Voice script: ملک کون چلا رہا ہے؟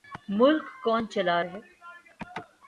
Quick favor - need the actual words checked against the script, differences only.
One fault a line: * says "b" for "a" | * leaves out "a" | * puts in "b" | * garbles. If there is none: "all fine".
* leaves out "رہا"